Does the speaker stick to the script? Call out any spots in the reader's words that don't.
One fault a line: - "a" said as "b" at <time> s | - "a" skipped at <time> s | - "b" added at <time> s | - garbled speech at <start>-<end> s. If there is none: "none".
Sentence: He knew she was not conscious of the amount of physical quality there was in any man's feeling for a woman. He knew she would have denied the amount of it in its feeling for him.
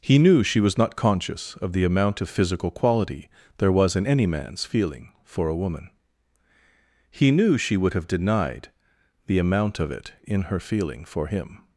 - "its" said as "her" at 10.4 s